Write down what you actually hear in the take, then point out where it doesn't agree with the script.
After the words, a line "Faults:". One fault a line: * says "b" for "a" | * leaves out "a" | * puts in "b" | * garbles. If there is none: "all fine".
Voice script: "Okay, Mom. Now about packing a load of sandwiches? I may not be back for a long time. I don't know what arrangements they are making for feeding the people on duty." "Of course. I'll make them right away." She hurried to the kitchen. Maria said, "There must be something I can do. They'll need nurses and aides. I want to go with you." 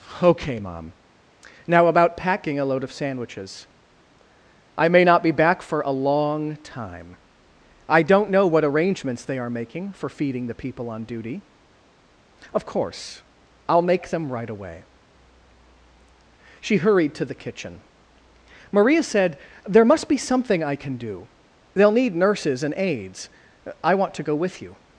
"Okay, Mom. Now about packing a load of sandwiches? I may not be back for a long time. I don't know what arrangements they are making for feeding the people on duty." "Of course. I'll make them right away." She hurried to the kitchen. Maria said, "There must be something I can do. They'll need nurses and aides. I want to go with you."
Faults:
all fine